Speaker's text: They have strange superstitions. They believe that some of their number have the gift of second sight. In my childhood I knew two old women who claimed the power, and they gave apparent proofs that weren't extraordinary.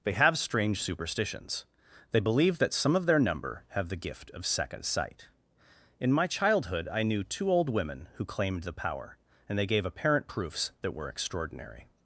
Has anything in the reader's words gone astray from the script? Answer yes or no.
yes